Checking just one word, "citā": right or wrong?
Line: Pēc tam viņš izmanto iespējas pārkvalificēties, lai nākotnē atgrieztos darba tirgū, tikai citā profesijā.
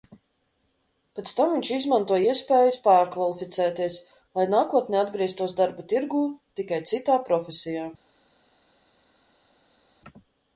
right